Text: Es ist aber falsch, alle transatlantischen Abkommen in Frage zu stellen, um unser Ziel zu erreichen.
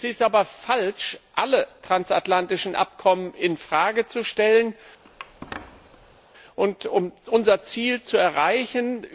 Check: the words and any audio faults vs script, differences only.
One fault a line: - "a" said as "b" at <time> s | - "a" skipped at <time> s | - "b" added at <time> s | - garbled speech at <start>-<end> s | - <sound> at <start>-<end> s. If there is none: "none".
- squeak at 5.0-6.2 s